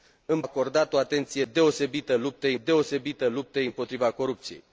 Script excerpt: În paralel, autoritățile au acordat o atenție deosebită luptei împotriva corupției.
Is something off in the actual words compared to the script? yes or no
yes